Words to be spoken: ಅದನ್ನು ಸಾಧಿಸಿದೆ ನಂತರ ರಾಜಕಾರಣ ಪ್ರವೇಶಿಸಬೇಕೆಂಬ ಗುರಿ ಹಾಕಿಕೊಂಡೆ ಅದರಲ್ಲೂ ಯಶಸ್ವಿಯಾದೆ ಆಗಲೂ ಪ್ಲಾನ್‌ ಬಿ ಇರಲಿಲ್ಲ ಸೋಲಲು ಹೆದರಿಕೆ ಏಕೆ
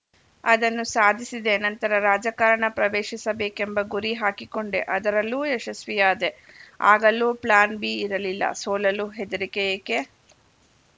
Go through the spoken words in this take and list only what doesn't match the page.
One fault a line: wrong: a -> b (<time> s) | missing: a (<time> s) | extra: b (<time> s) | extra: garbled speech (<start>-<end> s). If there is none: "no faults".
no faults